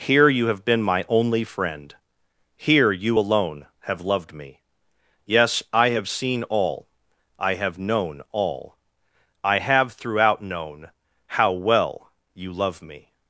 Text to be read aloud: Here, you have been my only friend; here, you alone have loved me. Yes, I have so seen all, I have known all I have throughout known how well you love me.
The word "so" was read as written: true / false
false